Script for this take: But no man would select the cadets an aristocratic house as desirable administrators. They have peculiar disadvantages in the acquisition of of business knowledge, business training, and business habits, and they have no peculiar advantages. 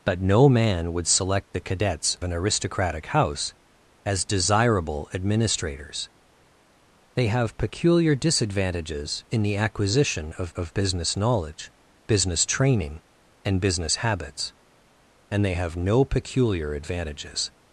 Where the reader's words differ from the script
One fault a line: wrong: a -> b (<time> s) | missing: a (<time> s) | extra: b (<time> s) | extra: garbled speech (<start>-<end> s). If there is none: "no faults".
no faults